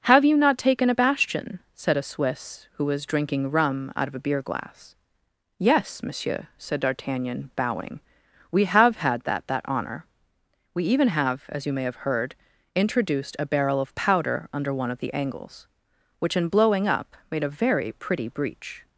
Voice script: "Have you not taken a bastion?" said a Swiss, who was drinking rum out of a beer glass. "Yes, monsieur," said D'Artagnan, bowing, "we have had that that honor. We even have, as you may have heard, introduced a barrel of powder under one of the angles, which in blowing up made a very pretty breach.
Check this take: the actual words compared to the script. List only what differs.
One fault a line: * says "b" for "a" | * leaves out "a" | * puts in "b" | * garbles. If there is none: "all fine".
all fine